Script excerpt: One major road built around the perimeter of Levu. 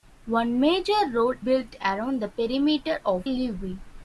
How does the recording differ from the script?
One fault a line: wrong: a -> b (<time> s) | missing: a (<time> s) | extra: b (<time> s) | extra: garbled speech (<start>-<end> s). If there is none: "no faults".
no faults